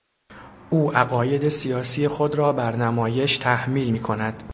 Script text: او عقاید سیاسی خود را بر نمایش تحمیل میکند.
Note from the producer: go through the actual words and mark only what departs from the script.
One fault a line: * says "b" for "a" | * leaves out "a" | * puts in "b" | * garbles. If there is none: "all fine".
all fine